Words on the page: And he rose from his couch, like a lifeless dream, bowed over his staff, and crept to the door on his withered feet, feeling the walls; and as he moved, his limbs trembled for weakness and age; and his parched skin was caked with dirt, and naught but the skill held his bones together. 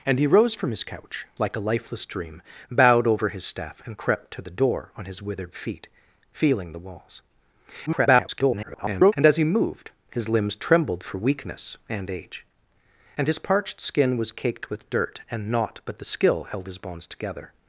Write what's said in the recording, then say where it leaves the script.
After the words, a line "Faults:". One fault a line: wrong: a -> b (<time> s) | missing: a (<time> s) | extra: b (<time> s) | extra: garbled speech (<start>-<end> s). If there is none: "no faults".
And he rose from his couch, like a lifeless dream, bowed over his staff, and crept to the door on his withered feet, feeling the walls; [garbled] and as he moved, his limbs trembled for weakness and age; and his parched skin was caked with dirt, and naught but the skill held his bones together.
Faults:
extra: garbled speech (7.9-9.1 s)